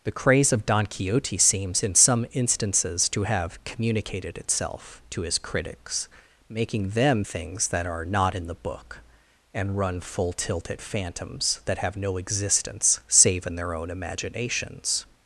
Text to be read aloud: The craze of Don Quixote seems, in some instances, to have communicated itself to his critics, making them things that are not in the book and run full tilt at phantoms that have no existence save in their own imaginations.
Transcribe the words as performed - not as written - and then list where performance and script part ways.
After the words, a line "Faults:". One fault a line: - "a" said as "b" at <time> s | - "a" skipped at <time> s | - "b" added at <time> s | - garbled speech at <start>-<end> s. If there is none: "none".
The craze of Don Quixote seems, in some instances, to have communicated itself to his critics, making them things that are not in the book and run full tilt at phantoms that have no existence save in their own imaginations.
Faults:
none